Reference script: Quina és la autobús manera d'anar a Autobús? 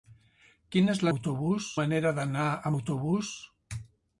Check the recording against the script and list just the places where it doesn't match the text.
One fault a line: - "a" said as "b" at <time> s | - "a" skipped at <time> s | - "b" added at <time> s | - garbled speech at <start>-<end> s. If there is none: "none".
none